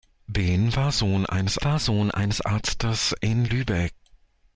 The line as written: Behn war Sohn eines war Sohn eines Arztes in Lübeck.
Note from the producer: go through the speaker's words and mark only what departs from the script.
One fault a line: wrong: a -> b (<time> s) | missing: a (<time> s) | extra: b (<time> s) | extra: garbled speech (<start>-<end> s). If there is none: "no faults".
no faults